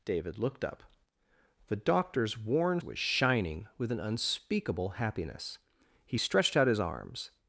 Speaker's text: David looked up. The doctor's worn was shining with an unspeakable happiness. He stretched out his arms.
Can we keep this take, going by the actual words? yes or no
yes